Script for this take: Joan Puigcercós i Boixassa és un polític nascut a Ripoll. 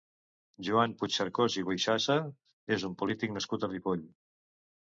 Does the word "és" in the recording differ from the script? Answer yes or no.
no